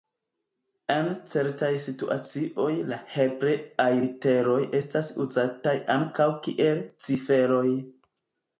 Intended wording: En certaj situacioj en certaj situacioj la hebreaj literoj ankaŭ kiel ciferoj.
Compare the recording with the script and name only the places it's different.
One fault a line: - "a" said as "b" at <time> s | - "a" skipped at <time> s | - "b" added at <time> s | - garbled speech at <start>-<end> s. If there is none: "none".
- "en certaj situacioj" skipped at 2.7 s
- "estas uzataj" added at 4.8 s